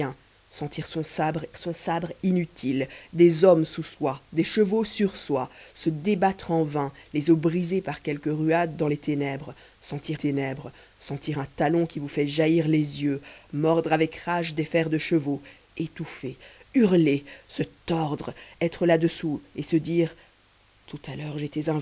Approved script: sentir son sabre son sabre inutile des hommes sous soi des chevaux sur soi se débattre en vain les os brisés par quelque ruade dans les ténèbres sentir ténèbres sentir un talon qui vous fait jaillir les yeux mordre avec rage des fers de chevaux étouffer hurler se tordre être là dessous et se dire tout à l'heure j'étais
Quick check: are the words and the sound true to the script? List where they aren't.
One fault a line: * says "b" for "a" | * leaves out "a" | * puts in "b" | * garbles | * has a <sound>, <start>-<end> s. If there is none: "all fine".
all fine